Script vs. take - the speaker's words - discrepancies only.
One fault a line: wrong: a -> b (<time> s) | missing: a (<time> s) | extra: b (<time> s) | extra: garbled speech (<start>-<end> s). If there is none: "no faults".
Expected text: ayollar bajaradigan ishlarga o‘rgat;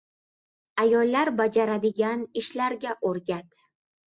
no faults